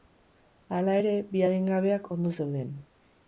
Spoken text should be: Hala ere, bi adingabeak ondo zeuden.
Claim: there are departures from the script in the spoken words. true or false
false